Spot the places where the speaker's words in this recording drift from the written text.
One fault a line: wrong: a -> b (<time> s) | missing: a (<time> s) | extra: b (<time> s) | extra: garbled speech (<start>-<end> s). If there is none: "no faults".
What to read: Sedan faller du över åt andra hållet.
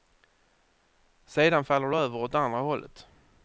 no faults